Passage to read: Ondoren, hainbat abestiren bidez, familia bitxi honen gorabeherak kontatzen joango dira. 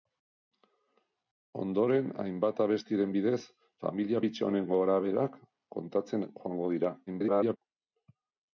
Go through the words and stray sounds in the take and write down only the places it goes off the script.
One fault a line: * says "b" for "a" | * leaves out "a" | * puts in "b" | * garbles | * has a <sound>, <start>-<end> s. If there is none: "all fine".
* garbles